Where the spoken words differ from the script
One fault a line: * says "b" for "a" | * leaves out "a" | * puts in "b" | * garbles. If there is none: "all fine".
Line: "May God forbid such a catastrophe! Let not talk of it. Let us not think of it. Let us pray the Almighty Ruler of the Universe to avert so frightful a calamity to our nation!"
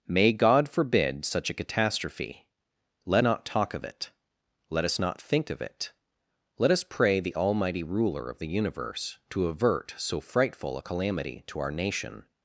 all fine